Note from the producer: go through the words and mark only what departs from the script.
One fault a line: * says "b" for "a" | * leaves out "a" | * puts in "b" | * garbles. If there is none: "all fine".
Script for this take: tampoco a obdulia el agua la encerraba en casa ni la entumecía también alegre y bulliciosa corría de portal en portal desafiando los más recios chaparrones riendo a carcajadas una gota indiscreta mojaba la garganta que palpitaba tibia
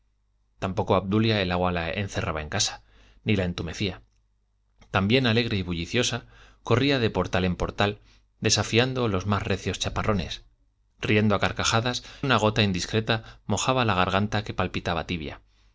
all fine